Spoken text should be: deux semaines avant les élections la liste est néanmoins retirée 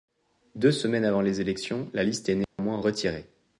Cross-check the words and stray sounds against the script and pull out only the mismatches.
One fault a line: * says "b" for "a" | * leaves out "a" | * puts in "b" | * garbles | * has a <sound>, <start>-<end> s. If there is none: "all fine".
* has a dropout, 2.4-2.6 s